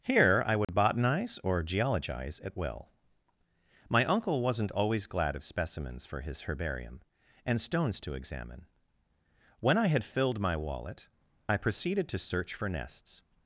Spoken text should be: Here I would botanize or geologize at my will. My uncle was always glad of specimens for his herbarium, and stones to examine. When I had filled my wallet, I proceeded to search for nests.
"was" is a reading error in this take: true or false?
true